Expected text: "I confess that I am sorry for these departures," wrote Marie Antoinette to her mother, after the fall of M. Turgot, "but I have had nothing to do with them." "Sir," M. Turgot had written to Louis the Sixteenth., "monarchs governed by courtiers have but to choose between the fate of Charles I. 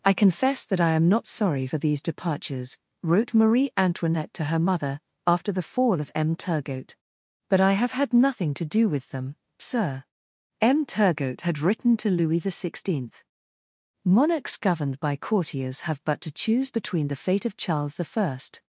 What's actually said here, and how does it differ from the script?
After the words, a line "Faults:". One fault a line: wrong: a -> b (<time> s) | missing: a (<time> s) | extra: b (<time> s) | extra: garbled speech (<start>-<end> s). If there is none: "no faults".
"I confess that I am not sorry for these departures," wrote Marie Antoinette to her mother, after the fall of M. Turgot, "but I have had nothing to do with them." "Sir," M. Turgot had written to Louis the Sixteenth., "monarchs governed by courtiers have but to choose between the fate of Charles I.
Faults:
extra: not (1.1 s)